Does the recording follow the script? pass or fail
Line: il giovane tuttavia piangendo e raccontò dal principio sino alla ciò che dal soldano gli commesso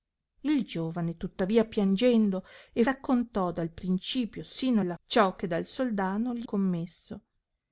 pass